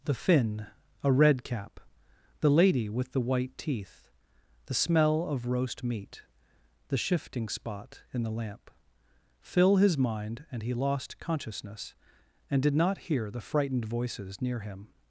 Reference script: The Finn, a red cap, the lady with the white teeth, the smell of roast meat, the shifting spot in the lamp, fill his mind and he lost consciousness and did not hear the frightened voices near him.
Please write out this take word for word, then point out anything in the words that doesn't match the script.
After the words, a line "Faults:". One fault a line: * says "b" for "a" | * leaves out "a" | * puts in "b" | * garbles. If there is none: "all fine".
The Finn, a red cap, the lady with the white teeth, the smell of roast meat, the shifting spot in the lamp, fill his mind and he lost consciousness and did not hear the frightened voices near him.
Faults:
all fine